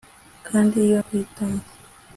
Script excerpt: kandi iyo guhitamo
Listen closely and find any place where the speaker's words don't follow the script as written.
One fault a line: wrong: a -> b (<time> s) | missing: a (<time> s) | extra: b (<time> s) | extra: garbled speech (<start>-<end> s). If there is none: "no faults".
no faults